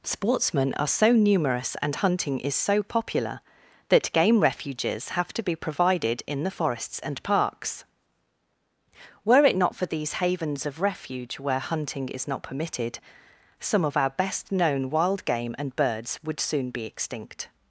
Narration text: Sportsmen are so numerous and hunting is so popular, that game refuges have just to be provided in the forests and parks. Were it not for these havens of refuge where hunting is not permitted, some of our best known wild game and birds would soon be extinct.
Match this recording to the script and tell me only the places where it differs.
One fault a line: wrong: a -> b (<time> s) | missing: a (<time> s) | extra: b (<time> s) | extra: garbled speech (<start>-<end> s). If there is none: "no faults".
missing: just (5.3 s)